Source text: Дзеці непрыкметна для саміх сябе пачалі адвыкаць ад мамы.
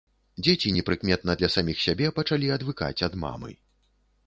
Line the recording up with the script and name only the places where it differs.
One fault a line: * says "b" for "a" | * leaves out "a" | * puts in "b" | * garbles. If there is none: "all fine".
all fine